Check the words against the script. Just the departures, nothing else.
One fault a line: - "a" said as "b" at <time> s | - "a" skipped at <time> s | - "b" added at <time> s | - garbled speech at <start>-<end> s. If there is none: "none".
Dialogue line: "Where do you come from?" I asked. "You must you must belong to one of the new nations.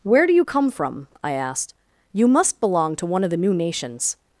- "you must" skipped at 2.6 s